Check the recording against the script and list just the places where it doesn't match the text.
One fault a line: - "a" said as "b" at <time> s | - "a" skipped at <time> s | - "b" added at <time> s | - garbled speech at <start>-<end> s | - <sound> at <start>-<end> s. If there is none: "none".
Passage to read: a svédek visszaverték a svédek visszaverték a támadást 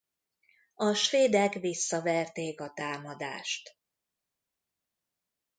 - "svédek visszaverték a" skipped at 2.7 s